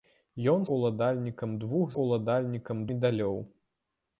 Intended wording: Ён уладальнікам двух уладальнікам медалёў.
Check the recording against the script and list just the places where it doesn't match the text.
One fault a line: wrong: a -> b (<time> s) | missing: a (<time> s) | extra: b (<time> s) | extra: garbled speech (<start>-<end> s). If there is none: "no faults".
no faults